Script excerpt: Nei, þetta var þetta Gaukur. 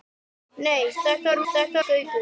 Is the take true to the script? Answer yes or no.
yes